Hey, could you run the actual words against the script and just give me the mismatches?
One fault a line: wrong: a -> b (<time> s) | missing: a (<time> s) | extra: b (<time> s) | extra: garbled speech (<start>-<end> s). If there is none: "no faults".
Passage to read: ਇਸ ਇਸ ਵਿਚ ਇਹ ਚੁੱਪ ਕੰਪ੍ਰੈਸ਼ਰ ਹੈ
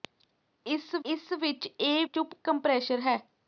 no faults